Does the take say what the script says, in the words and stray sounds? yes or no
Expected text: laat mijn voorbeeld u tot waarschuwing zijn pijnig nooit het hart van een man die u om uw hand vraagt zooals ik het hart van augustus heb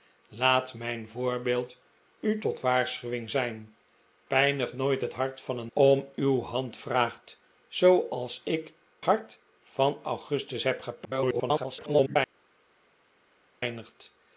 no